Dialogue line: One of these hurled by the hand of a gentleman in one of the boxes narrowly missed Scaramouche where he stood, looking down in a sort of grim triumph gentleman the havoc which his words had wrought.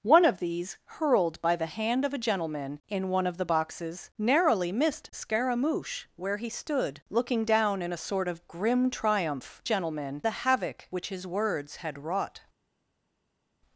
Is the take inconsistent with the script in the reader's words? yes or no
no